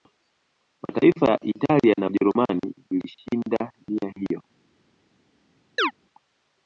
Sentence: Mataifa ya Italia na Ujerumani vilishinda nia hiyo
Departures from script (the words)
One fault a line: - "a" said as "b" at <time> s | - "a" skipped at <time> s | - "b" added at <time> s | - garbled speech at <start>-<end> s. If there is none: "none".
none